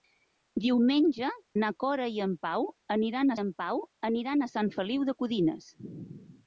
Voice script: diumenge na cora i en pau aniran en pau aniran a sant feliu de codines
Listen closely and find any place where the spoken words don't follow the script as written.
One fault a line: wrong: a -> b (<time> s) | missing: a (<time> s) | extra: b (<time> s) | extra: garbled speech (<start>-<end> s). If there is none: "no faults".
no faults